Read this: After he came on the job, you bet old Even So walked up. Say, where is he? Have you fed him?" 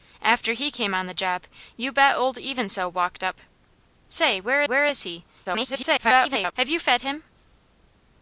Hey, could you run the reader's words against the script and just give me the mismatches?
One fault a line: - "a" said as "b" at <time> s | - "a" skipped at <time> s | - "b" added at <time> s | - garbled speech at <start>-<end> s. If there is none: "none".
- "where" added at 4.6 s
- garbled speech at 5.4-6.5 s